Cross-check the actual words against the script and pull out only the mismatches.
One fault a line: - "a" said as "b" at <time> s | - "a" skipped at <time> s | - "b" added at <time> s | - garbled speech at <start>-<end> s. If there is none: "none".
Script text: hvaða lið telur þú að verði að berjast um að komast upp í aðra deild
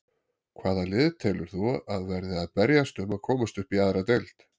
none